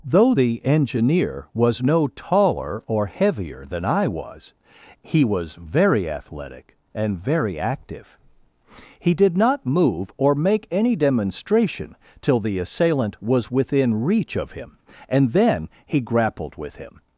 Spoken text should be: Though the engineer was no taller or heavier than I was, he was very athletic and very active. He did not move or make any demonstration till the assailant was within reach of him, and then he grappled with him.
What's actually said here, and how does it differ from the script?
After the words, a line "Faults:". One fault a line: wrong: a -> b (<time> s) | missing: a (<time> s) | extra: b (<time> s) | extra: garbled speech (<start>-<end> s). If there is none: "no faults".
Though the engineer was no taller or heavier than I was, he was very athletic and very active. He did not move or make any demonstration till the assailant was within reach of him, and then he grappled with him.
Faults:
no faults